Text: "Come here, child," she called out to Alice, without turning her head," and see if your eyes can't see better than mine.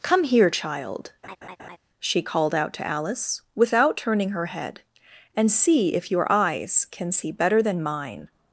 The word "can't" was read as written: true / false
false